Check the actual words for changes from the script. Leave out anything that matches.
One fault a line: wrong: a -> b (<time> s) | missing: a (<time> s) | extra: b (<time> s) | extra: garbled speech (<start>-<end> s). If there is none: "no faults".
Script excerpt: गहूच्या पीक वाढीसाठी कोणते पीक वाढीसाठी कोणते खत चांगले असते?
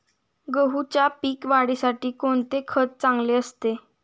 missing: पीक वाढीसाठी कोणते (2.6 s)